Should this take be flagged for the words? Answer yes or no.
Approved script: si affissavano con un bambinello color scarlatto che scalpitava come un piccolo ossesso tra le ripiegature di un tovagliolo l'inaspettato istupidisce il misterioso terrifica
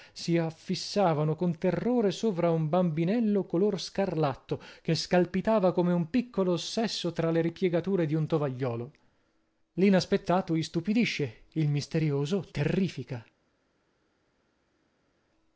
yes